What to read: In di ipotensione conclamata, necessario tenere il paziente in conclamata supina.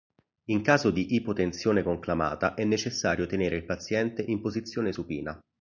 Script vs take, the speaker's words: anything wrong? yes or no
yes